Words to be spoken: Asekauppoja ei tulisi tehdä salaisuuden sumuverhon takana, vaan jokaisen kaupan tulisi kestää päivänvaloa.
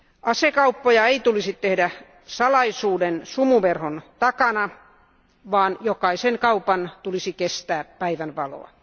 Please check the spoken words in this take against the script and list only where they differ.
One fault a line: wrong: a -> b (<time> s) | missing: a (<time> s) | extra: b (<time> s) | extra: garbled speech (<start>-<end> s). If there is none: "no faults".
no faults